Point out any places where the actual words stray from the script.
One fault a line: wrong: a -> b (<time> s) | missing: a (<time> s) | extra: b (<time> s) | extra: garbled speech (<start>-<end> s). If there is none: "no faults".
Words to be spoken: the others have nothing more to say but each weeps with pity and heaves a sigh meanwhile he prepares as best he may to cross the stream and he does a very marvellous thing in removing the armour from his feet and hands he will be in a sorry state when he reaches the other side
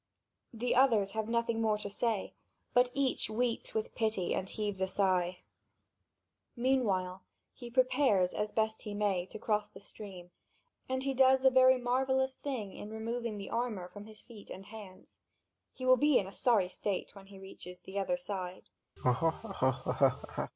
no faults